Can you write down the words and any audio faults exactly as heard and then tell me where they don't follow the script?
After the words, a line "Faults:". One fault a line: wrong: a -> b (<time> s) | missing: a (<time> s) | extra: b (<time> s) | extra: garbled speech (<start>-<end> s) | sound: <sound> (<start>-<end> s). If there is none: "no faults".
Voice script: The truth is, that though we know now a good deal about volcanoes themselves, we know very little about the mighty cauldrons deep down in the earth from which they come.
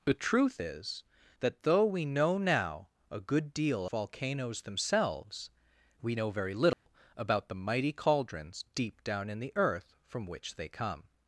The truth is, that though we know now a good deal volcanoes themselves, we know very little about the mighty cauldrons deep down in the earth from which they come.
Faults:
missing: about (3.9 s)
sound: dropout (6.7-6.9 s)